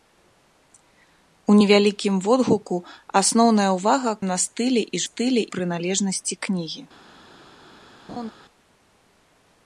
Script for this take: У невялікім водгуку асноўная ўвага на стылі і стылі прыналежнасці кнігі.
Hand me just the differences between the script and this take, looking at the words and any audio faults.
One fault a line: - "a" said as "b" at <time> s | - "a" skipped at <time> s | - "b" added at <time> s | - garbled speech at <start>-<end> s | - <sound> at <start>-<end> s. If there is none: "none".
- laugh at 8.1-8.3 s